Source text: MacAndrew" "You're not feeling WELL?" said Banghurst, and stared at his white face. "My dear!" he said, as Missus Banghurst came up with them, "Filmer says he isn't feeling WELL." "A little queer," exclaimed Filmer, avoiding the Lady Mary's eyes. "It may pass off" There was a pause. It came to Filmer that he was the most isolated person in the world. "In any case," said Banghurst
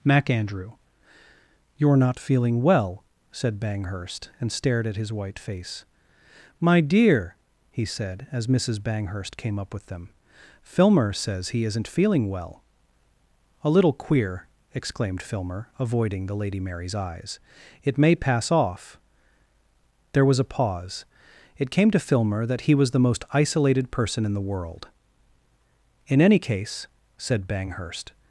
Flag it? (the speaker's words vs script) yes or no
no